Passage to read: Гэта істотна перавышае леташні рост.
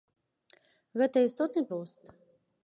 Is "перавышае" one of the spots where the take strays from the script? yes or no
yes